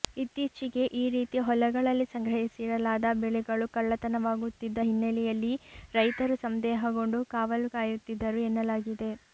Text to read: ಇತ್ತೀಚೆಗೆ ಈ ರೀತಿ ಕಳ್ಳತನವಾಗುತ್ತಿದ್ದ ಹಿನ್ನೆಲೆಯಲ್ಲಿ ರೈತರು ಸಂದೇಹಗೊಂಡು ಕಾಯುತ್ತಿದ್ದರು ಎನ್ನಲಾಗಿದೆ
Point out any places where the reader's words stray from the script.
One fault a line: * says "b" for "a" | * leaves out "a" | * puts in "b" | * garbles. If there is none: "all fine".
* puts in "ಹೊಲಗಳಲ್ಲಿ ಸಂಗ್ರಹಿಸಿಡಲಾದ ಬೆಳೆಗಳು"
* puts in "ಕಾವಲು"